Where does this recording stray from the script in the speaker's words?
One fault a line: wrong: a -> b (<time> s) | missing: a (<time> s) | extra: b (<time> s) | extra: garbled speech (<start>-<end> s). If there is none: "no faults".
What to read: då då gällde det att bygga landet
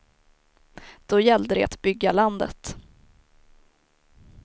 missing: då (1.2 s)